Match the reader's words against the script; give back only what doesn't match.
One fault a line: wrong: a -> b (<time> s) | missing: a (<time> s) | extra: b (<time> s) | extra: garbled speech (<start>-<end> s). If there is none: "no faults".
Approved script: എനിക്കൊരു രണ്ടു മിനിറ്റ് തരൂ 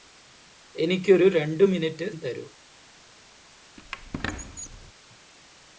no faults